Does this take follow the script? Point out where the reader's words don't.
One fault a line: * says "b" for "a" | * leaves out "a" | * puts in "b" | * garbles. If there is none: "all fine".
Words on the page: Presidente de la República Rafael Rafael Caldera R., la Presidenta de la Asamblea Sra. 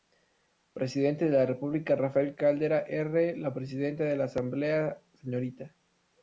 * leaves out "Rafael"